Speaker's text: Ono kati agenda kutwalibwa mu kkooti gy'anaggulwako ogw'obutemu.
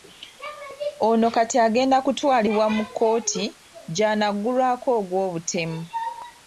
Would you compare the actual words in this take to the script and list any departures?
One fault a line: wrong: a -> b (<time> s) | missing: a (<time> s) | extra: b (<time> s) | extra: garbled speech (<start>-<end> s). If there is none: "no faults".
no faults